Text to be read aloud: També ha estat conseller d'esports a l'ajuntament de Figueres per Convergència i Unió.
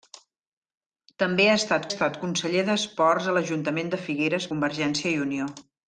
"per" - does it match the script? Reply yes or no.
no